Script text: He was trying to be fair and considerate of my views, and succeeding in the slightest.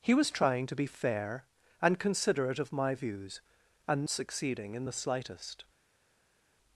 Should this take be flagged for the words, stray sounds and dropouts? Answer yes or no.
no